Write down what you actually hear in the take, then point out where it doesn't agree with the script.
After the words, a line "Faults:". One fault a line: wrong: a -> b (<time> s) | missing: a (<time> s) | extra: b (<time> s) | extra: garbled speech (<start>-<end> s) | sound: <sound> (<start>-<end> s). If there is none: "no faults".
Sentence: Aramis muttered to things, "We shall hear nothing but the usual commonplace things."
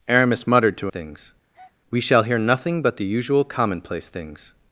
Aramis muttered to things, "We shall hear nothing but the usual commonplace things."
Faults:
sound: breath (1.5-1.8 s)